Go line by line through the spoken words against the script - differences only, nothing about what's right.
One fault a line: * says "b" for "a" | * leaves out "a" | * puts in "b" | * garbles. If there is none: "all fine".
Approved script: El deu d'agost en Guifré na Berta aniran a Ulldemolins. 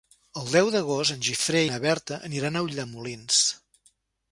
all fine